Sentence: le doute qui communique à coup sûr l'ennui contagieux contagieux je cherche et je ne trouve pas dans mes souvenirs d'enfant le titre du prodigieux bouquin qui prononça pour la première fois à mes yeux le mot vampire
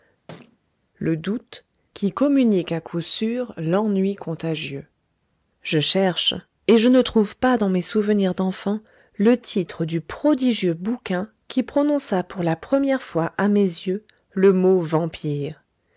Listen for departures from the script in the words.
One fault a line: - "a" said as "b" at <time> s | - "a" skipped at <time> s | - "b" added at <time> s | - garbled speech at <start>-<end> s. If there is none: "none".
- "contagieux" skipped at 4.9 s